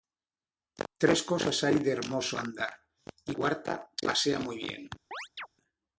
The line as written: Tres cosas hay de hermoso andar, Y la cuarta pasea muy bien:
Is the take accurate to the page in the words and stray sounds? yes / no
no